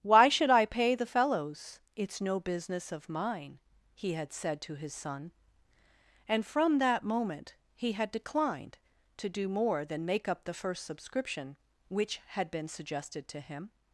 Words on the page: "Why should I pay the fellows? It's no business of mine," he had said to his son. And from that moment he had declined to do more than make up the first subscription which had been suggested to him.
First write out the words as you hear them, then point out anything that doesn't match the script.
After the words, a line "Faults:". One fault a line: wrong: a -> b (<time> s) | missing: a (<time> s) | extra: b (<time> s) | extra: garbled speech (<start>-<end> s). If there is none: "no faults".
"Why should I pay the fellows? It's no business of mine," he had said to his son. And from that moment he had declined to do more than make up the first subscription which had been suggested to him.
Faults:
no faults